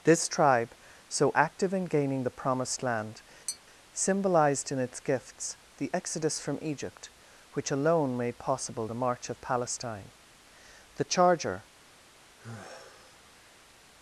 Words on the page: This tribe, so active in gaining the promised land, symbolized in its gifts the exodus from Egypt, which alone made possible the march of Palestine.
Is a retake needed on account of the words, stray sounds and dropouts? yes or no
yes